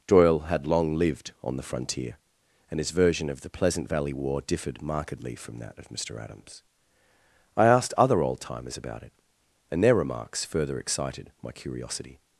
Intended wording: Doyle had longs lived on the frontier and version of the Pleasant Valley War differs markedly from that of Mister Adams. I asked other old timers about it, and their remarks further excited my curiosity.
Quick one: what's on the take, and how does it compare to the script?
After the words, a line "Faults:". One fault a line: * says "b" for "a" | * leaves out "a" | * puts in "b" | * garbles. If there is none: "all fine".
Doyle had long lived on the frontier and his version of the Pleasant Valley War differed markedly from that of Mister Adams. I asked other old timers about it, and their remarks further excited my curiosity.
Faults:
* says "long" for "longs"
* puts in "his"
* says "differed" for "differs"